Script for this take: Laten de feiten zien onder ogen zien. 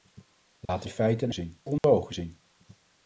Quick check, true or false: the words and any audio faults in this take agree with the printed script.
false